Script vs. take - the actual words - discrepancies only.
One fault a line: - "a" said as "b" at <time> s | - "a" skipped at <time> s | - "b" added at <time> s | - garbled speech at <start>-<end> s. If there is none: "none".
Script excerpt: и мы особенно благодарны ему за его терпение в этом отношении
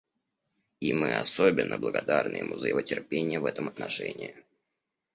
none